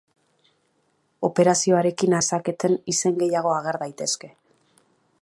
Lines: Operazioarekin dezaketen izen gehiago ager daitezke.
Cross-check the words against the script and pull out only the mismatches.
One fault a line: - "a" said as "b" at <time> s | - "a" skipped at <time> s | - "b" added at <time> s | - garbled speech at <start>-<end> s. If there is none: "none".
none